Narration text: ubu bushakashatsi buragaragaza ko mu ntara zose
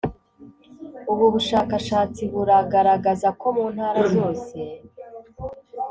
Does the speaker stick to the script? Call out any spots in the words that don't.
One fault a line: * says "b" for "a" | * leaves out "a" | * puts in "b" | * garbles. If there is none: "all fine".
all fine